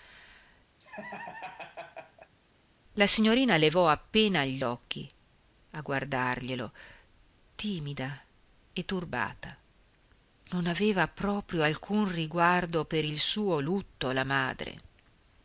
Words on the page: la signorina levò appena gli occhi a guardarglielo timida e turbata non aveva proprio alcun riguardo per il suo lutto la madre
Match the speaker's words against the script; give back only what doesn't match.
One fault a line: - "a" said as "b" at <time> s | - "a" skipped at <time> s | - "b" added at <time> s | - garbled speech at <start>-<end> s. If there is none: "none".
none